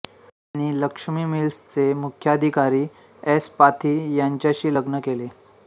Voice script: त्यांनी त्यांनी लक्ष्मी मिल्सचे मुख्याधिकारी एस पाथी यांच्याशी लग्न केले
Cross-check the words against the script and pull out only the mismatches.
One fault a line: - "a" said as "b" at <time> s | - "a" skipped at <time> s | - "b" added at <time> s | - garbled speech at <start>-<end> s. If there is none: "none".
- "त्यांनी" skipped at 0.8 s